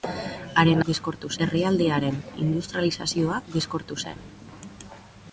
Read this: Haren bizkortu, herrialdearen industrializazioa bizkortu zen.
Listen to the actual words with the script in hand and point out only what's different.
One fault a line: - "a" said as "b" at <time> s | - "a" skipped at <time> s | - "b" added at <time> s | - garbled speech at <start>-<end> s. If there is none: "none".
none